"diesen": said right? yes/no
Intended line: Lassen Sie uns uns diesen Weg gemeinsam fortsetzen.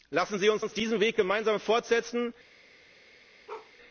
yes